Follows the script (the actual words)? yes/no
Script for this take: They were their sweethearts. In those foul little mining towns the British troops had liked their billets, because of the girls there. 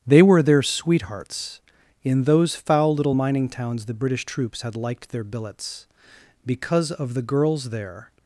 yes